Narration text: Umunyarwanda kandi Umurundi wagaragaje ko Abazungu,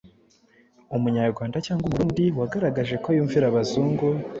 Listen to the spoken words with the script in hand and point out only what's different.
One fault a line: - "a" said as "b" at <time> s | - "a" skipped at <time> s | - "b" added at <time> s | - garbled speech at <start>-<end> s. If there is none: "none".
- "kandi" said as "cyangwa" at 1.6 s
- "yumvira" added at 3.2 s